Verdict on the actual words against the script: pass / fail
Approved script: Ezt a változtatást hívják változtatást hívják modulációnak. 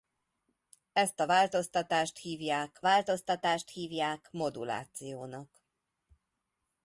pass